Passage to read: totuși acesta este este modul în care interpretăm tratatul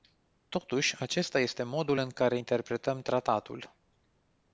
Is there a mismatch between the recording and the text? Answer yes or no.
yes